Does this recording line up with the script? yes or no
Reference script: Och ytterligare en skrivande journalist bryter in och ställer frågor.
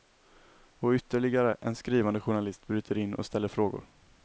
yes